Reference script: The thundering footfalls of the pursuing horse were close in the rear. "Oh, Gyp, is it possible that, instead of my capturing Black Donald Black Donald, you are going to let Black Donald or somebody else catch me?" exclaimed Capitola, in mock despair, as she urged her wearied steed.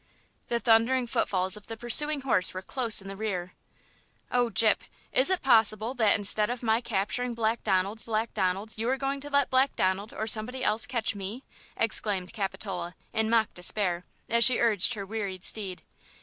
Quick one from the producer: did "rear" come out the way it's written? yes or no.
yes